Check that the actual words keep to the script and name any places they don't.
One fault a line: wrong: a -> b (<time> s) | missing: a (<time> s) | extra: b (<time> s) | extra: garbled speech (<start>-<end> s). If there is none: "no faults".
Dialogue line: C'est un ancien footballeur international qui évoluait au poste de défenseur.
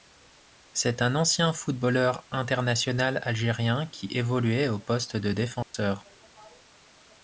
extra: algérien (3.2 s)